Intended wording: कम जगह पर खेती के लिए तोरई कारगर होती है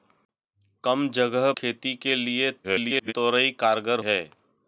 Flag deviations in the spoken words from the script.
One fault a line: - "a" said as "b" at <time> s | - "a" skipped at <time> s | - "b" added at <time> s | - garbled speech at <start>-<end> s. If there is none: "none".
- "पर" skipped at 1.5 s
- garbled speech at 2.6-3.1 s
- "होती" skipped at 4.0 s